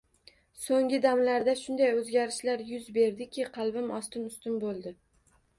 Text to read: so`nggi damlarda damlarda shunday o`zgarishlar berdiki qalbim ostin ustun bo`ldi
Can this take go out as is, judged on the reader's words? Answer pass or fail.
fail